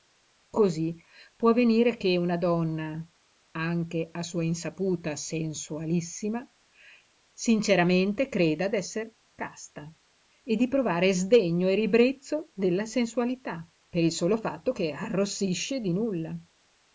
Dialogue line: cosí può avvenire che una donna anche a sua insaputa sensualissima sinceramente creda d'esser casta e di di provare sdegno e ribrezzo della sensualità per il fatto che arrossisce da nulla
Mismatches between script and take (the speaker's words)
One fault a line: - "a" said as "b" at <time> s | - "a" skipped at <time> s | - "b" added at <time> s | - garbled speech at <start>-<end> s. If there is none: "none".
- "di" skipped at 10.7 s
- "solo" added at 14.1 s
- "da" said as "di" at 15.8 s